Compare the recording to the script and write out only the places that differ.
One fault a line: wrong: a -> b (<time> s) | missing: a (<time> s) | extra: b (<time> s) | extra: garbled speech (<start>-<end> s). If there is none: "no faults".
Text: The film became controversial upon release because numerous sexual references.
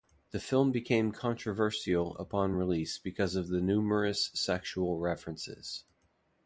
extra: of the (3.4 s)